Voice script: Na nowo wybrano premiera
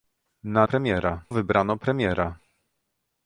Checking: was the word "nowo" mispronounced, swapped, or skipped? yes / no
yes